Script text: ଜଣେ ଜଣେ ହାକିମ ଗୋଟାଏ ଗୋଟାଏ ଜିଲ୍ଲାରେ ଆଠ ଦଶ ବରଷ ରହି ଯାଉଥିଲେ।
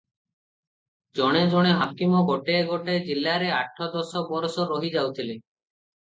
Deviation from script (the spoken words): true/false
false